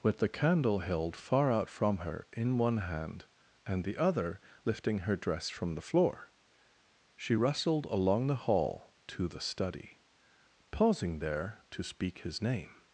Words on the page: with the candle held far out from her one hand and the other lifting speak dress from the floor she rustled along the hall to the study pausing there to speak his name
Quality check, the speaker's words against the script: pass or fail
fail